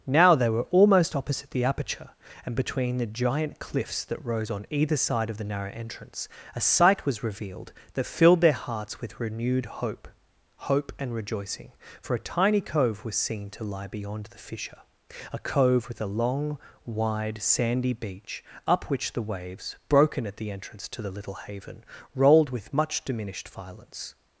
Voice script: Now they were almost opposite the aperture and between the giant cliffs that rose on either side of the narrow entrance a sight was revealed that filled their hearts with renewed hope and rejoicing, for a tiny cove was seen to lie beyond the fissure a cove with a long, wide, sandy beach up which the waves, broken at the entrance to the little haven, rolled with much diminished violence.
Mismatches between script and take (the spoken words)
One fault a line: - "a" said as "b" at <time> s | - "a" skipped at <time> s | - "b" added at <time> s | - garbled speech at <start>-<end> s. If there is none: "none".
- "hope" added at 10.7 s